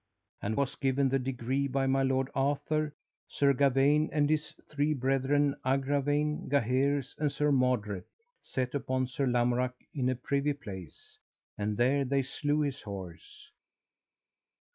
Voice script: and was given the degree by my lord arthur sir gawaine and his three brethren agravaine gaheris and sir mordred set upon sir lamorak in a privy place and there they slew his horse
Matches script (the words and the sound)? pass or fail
pass